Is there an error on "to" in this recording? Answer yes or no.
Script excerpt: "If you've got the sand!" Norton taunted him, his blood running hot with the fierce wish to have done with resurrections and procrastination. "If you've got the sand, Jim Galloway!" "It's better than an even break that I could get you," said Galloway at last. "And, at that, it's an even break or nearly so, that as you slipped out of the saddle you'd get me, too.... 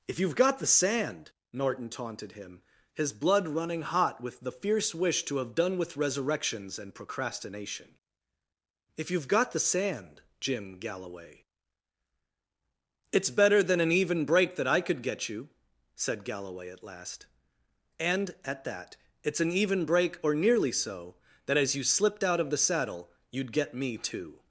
no